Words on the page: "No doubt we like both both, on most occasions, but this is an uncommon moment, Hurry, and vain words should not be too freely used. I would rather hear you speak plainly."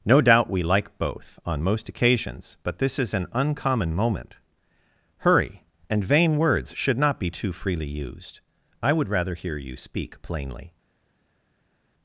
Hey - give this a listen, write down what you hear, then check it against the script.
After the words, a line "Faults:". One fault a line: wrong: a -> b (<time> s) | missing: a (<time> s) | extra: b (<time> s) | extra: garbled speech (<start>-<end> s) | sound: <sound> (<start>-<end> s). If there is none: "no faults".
"No doubt we like both, on most occasions, but this is an uncommon moment, Hurry, and vain words should not be too freely used. I would rather hear you speak plainly."
Faults:
missing: both (1.4 s)